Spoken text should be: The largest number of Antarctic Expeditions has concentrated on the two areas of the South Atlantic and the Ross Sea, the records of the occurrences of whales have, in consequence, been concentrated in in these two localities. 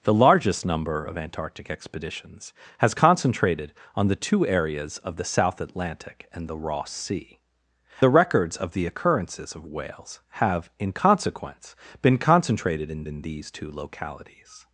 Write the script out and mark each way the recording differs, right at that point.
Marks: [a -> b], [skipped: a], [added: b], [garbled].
The largest number of Antarctic Expeditions has concentrated on the two areas of the South Atlantic and the Ross Sea, the records of the occurrences of whales have, in consequence, been concentrated in in these two localities.